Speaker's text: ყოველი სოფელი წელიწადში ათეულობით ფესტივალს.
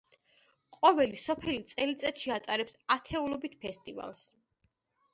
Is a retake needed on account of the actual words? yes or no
yes